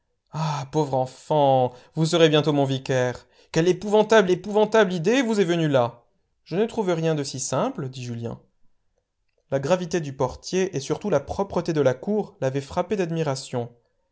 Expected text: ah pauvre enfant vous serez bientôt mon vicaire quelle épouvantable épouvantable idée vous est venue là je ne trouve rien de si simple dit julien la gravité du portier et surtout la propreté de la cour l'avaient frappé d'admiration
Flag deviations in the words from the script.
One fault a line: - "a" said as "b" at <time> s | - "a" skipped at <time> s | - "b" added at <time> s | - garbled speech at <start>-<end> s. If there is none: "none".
none